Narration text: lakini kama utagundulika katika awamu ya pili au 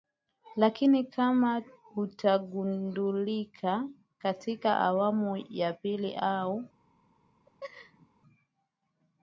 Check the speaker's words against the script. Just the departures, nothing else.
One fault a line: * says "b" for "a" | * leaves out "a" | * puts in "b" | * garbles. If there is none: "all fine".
all fine